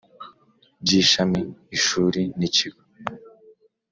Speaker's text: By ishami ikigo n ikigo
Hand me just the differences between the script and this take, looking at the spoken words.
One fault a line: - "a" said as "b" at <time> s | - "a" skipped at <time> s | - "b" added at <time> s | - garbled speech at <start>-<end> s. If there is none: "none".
- "ikigo" said as "ishuri" at 1.8 s